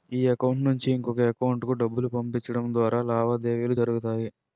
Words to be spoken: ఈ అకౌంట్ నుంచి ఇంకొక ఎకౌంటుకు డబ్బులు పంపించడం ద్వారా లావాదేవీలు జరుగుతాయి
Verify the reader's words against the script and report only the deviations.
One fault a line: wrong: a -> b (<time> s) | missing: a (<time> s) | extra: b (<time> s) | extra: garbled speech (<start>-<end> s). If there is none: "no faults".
no faults